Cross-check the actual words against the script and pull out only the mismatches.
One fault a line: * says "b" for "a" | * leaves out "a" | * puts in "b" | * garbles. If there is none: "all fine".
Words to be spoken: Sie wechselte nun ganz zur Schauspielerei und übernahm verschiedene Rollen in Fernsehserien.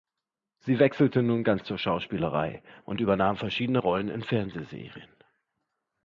all fine